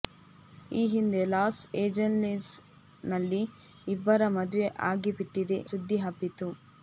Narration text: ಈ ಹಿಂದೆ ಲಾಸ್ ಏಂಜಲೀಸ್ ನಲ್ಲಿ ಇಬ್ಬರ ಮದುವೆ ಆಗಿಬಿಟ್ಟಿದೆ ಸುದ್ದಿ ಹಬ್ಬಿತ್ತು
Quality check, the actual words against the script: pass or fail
pass